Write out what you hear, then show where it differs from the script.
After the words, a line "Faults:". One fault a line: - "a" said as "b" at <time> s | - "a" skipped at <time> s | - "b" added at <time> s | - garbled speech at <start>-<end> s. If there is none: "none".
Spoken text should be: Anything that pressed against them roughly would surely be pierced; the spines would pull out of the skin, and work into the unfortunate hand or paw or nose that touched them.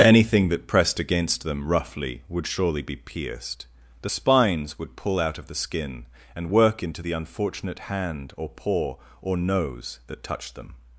Anything that pressed against them roughly would surely be pierced; the spines would pull out of the skin, and work into the unfortunate hand or paw or nose that touched them.
Faults:
none